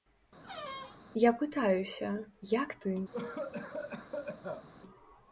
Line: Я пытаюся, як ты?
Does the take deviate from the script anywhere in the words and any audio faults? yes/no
yes